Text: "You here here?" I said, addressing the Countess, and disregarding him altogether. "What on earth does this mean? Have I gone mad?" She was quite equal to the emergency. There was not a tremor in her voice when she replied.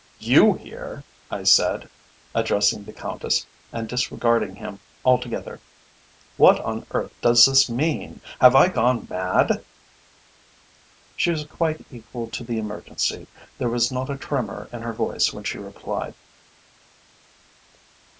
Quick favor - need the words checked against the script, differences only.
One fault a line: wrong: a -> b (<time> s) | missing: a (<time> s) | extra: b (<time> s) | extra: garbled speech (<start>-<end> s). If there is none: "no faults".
missing: here (1.1 s)